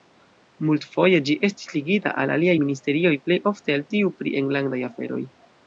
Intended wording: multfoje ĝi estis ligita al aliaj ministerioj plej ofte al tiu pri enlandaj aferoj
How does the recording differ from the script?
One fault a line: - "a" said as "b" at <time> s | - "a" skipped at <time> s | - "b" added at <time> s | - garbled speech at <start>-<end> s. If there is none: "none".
none